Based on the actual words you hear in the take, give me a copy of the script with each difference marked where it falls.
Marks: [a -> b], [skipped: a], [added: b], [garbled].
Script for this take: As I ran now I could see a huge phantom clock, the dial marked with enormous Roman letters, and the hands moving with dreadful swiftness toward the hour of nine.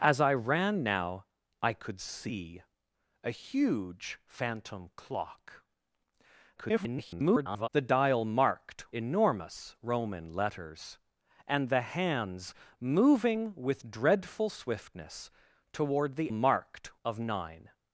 As I ran now I could see a huge phantom clock, [garbled] the dial marked [skipped: with] enormous Roman letters, and the hands moving with dreadful swiftness toward the [hour -> marked] of nine.